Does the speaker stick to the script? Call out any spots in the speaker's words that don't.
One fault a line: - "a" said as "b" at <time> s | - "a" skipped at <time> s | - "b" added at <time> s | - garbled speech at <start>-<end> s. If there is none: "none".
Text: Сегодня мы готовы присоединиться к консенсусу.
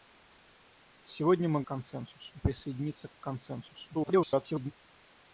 - "готовы" said as "консенсусу" at 1.7 s
- garbled speech at 3.9-4.7 s